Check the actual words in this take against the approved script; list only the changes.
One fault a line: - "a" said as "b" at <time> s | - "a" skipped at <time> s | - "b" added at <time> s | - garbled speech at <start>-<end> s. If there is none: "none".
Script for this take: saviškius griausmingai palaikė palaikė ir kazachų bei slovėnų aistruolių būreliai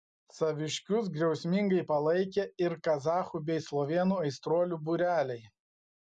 - "palaikė" skipped at 2.4 s